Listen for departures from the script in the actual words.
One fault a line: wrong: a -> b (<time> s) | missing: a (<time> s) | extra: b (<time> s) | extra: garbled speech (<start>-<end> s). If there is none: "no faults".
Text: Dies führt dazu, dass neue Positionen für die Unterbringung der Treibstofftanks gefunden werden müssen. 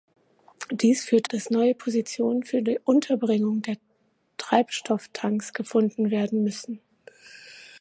missing: dazu (1.3 s)